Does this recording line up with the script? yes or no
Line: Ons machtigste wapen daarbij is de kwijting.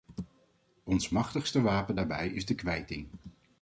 yes